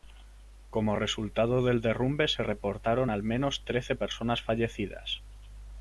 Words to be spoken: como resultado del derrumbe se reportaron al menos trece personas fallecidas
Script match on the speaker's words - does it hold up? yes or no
yes